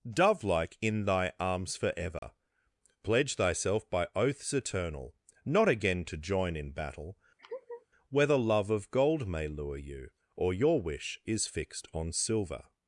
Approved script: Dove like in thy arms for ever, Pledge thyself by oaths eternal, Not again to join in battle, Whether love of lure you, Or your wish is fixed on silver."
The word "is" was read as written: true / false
true